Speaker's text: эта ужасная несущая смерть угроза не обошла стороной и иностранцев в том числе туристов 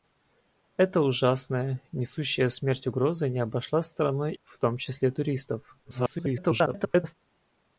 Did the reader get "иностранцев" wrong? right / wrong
wrong